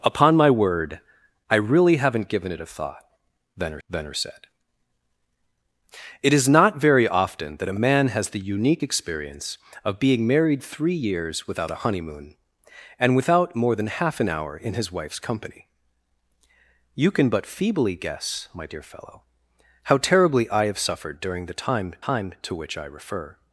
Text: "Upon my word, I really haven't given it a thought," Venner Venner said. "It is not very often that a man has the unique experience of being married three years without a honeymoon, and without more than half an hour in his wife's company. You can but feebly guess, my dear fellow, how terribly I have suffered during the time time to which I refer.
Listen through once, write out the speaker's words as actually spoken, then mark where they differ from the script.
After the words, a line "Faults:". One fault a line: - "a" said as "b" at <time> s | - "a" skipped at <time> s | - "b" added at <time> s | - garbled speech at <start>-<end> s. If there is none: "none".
"Upon my word, I really haven't given it a thought," Venner Venner said. "It is not very often that a man has the unique experience of being married three years without a honeymoon, and without more than half an hour in his wife's company. You can but feebly guess, my dear fellow, how terribly I have suffered during the time time to which I refer.
Faults:
none